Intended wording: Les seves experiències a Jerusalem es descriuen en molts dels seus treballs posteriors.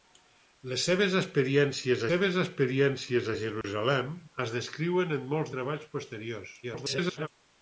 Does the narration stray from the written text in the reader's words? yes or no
yes